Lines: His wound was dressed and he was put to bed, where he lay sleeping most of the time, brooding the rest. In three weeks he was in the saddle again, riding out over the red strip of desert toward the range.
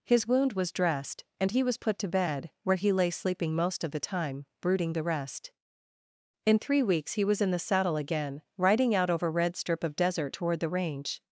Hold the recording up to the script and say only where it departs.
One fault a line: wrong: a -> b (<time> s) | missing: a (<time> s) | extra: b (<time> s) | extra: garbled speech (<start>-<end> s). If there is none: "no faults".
missing: the (9.3 s)